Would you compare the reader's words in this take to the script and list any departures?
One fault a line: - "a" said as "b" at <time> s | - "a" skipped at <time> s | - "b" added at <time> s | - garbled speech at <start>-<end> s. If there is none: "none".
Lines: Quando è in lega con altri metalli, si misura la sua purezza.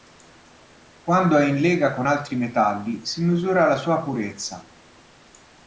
none